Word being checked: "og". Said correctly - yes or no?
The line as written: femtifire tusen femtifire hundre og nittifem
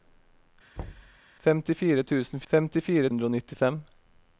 yes